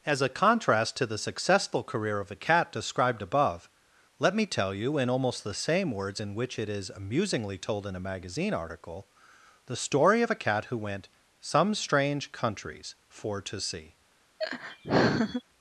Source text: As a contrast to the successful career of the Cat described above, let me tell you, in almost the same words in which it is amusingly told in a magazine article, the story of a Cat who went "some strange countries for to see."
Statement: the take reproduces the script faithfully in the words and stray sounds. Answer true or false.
false